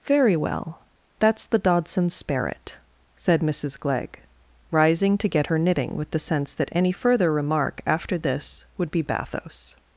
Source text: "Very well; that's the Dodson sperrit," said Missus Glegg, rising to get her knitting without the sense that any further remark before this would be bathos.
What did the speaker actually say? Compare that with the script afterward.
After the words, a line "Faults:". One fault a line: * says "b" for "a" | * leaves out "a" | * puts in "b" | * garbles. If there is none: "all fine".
"Very well; that's the Dodson sperrit," said Missus Glegg, rising to get her knitting with the sense that any further remark after this would be bathos.
Faults:
* says "with" for "without"
* says "after" for "before"